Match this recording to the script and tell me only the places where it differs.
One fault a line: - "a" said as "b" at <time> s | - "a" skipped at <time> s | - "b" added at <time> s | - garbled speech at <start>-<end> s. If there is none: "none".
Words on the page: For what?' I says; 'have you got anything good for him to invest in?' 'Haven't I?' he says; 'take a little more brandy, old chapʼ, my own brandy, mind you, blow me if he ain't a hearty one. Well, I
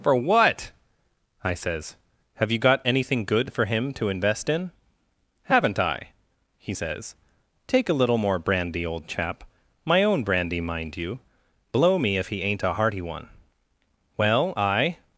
none